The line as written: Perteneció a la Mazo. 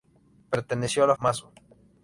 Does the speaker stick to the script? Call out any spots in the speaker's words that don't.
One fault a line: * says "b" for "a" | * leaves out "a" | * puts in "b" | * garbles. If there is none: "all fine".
all fine